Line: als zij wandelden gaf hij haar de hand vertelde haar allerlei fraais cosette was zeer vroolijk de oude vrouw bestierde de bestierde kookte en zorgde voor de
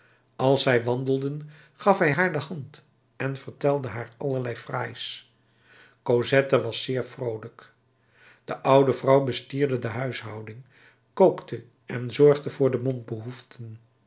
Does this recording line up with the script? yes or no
no